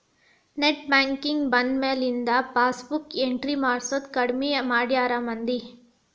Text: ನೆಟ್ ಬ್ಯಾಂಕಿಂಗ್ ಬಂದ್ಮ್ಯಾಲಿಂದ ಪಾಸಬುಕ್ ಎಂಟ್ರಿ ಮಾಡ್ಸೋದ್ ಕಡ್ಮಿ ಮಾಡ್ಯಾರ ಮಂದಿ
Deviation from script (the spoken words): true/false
false